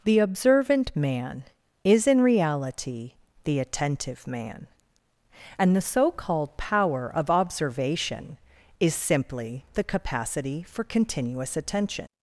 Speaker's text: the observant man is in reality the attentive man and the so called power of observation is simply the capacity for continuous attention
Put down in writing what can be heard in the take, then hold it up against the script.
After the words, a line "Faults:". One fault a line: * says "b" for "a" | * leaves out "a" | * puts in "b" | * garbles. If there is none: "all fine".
the observant man is in reality the attentive man and the so called power of observation is simply the capacity for continuous attention
Faults:
all fine